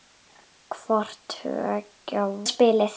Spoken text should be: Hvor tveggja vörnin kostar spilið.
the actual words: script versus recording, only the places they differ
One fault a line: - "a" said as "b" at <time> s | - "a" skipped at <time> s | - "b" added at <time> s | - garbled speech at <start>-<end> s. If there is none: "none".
- "vörnin kostar" skipped at 2.2 s